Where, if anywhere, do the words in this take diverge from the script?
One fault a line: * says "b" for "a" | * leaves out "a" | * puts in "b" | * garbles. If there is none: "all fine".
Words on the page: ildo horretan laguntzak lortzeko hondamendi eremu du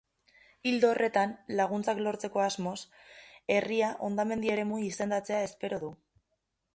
* puts in "asmoz herria"
* puts in "izendatzea espero"